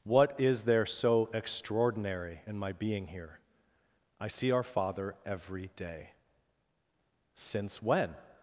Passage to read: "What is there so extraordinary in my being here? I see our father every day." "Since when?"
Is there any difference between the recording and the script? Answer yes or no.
no